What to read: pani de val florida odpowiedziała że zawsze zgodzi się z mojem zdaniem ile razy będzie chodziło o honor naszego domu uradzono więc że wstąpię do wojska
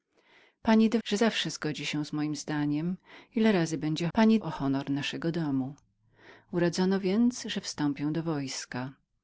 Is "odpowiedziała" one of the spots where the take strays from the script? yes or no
yes